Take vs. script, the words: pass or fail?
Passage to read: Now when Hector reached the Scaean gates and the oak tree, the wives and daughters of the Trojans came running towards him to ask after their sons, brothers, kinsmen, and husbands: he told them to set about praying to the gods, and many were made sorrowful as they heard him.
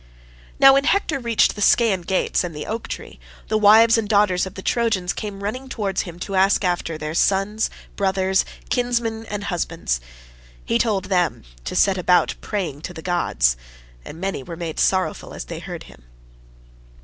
pass